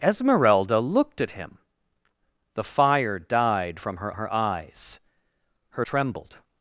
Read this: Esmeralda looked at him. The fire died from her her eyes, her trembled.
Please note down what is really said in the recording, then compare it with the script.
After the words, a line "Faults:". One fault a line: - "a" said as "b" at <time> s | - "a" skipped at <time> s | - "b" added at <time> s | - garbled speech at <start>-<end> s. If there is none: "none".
Esmeralda looked at him. The fire died from her her eyes, her trembled.
Faults:
none